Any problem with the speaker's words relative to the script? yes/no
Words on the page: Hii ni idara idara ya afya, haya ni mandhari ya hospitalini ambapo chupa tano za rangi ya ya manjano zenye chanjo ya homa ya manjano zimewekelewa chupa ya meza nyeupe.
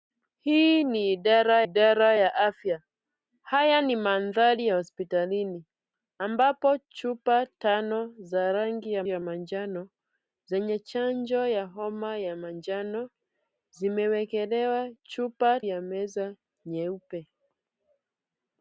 no